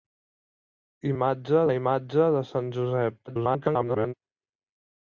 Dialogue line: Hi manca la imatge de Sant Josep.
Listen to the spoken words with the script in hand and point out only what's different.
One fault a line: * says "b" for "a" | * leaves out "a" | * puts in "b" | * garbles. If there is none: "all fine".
* says "imatge" for "manca"
* garbles